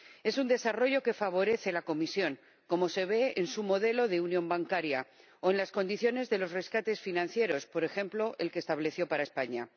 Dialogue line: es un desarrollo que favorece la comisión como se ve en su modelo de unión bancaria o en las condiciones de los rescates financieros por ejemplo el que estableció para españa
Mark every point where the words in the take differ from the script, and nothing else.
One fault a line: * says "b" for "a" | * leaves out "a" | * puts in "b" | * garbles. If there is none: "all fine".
all fine